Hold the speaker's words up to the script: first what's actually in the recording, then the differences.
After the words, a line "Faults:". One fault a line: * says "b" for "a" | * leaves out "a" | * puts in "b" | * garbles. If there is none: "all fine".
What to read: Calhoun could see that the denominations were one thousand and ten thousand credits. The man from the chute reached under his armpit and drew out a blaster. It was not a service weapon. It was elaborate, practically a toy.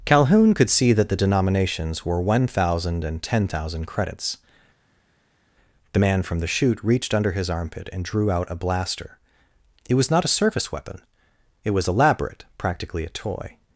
Calhoun could see that the denominations were one thousand and ten thousand credits. The man from the chute reached under his armpit and drew out a blaster. It was not a service weapon. It was elaborate, practically a toy.
Faults:
all fine